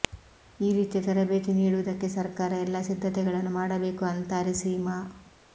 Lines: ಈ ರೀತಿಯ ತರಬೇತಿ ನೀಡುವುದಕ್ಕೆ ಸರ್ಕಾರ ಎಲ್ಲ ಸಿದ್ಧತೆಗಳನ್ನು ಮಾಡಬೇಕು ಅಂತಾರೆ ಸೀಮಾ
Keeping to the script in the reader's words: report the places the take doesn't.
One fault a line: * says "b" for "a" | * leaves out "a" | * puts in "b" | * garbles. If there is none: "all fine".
all fine